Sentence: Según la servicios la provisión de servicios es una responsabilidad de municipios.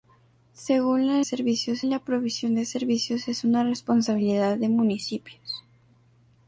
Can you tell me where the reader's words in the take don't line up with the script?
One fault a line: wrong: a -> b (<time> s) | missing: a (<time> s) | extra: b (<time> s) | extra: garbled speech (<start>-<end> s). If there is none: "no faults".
no faults